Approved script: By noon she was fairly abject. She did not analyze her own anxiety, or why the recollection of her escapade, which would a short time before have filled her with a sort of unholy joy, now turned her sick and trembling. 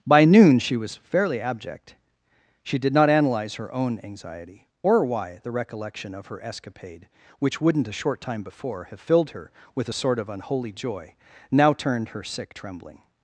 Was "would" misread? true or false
true